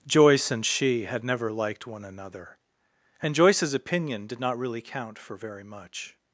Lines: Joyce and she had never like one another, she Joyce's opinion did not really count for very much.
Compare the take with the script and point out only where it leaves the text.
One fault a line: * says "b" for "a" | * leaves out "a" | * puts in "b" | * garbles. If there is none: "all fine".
* says "liked" for "like"
* says "and" for "she"